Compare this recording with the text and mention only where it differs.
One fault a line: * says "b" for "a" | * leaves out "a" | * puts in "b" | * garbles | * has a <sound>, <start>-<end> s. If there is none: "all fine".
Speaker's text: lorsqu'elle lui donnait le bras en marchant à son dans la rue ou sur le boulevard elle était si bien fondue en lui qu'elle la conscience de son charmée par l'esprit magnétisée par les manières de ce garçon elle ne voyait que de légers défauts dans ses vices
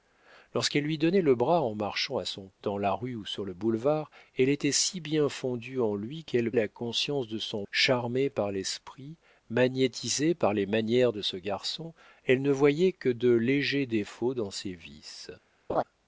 * has a laugh, 15.7-15.8 s